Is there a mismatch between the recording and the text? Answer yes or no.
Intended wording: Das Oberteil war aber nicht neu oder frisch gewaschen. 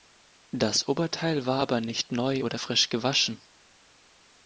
no